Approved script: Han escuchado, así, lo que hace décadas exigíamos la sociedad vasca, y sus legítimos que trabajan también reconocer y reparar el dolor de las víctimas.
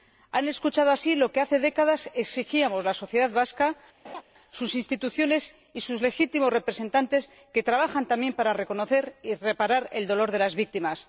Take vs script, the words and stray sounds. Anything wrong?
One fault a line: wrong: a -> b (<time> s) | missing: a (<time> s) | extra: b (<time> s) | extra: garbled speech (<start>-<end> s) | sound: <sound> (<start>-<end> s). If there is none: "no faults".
sound: laugh (4.0-4.2 s)
extra: sus instituciones (4.5 s)
extra: representantes (6.5 s)
extra: para (8.3 s)